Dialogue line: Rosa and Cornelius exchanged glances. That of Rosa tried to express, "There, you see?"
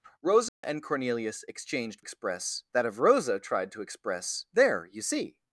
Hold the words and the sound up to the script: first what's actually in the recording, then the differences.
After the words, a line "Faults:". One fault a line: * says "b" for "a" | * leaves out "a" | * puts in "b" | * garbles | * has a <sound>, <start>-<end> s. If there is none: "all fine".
Rosa and Cornelius exchanged express. That of Rosa tried to express, "There, you see?"
Faults:
* has a dropout, 0.5-0.6 s
* says "express" for "glances"